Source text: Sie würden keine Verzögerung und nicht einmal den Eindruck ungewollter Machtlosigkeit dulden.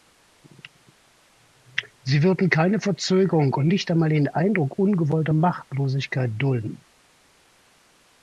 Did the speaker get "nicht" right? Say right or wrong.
right